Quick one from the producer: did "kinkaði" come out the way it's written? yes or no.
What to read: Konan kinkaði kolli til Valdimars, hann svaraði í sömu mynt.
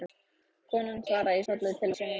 no